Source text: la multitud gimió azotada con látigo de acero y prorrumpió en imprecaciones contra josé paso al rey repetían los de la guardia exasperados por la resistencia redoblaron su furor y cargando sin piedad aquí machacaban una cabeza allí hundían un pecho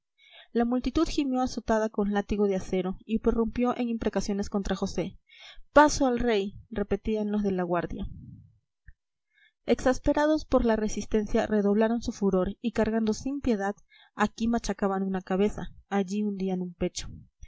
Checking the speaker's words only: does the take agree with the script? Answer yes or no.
yes